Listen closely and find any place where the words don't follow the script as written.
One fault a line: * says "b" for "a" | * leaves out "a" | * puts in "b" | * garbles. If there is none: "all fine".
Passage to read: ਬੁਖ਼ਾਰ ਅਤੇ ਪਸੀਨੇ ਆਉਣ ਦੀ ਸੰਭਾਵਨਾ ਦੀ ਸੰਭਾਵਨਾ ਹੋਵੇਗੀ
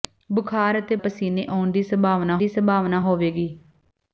all fine